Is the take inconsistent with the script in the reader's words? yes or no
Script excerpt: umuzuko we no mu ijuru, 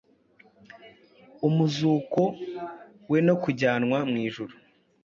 yes